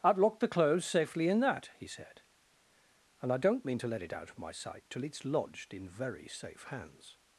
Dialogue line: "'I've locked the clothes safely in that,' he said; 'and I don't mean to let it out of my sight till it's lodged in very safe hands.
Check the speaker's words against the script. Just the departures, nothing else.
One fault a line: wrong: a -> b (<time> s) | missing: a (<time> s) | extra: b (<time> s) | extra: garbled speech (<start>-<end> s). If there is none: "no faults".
no faults